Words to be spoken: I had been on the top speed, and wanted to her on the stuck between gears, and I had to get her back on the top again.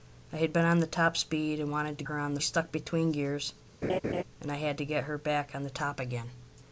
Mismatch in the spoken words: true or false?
false